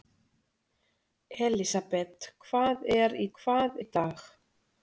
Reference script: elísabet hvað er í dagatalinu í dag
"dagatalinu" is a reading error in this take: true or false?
true